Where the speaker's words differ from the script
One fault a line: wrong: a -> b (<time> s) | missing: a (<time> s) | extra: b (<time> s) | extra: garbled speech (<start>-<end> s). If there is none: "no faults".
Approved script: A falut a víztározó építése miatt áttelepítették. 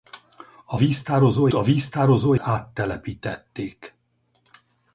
wrong: falut -> víztározó (0.8 s)
missing: építése miatt (2.3 s)